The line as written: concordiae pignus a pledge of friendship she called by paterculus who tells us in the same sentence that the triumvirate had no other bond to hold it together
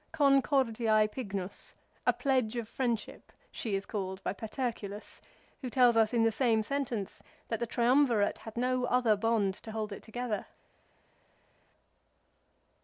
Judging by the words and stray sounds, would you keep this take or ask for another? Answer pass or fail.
fail